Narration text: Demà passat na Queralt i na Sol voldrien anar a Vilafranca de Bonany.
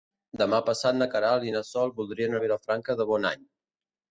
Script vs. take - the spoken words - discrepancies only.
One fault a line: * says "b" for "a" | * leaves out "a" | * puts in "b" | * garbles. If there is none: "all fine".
* leaves out "anar"